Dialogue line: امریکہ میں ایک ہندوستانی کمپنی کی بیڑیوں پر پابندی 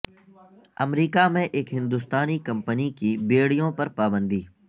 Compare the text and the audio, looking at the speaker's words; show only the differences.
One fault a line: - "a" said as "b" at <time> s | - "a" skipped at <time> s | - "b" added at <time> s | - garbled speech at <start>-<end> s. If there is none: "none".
none